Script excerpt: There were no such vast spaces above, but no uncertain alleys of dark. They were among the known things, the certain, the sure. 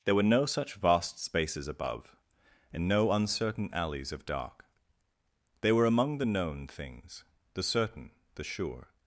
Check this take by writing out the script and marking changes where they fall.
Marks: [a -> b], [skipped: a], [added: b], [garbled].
There were no such vast spaces above, [but -> and] no uncertain alleys of dark. They were among the known things, the certain, the sure.